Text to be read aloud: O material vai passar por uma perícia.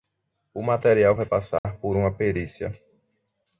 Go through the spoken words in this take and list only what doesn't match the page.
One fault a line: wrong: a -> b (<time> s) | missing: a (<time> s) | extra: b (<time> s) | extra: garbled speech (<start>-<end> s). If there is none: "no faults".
no faults